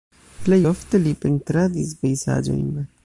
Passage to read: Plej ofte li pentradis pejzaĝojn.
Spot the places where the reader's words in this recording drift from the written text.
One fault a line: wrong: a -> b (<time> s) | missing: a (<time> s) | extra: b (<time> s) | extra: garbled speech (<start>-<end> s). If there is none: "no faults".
no faults